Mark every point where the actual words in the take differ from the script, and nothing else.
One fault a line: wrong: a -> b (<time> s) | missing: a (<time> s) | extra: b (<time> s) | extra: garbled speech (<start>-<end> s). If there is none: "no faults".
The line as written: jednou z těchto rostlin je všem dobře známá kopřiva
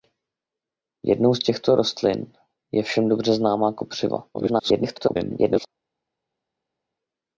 extra: garbled speech (4.3-5.7 s)